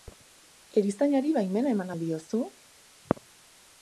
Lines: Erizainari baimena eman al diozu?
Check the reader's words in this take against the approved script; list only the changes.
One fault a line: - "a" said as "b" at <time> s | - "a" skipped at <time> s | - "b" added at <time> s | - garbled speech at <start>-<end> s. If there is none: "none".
none